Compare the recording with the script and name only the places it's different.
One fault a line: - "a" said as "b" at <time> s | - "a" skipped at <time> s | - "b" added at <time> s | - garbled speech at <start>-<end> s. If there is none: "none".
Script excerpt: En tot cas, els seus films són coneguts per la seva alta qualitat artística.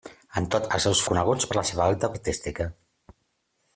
- "cas" skipped at 0.6 s
- "films són" skipped at 1.0 s
- "qualitat" skipped at 2.1 s